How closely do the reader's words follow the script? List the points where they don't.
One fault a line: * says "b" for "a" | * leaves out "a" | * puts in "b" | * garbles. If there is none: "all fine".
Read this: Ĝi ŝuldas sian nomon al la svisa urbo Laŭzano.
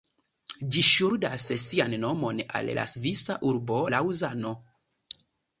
all fine